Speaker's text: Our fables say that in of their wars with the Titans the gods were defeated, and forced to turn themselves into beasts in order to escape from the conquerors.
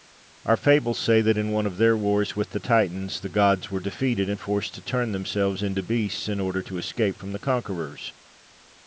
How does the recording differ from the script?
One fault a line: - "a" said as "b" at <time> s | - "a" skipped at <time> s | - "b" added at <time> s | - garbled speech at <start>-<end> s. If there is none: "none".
- "one" added at 1.5 s